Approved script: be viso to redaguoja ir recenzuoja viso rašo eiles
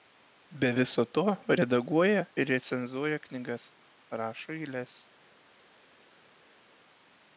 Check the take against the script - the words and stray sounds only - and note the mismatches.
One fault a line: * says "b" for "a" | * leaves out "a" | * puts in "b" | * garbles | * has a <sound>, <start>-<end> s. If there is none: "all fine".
* says "knygas" for "viso"